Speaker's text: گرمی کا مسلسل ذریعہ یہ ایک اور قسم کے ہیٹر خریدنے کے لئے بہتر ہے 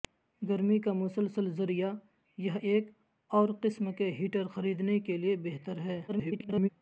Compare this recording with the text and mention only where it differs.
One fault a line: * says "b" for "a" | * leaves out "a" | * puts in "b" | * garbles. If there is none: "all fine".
* garbles